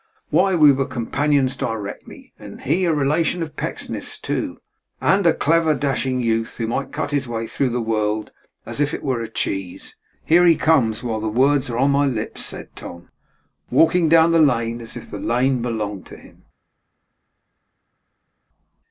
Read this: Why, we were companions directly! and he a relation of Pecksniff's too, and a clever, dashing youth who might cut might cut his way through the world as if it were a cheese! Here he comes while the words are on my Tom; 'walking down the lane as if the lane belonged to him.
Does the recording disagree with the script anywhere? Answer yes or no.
yes